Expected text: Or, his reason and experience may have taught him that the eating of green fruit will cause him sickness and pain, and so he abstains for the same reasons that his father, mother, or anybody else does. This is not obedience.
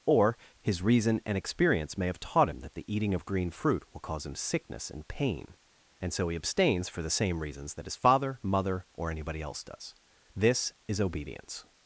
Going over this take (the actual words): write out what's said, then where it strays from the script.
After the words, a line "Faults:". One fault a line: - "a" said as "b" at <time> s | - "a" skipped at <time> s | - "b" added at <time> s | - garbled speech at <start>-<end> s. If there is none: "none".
Or, his reason and experience may have taught him that the eating of green fruit will cause him sickness and pain, and so he abstains for the same reasons that his father, mother, or anybody else does. This is obedience.
Faults:
- "not" skipped at 11.0 s